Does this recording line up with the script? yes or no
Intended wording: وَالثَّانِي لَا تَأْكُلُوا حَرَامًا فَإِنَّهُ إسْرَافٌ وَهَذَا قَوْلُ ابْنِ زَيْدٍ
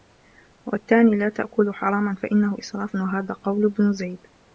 yes